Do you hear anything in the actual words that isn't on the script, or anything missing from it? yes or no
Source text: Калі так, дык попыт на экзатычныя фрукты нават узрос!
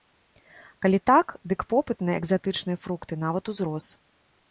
no